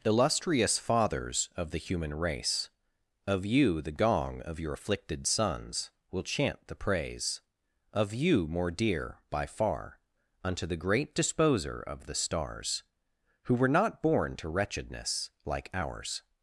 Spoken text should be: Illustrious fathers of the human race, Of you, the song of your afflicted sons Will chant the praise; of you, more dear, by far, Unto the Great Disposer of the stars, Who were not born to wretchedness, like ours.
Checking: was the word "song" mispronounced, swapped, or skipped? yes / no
yes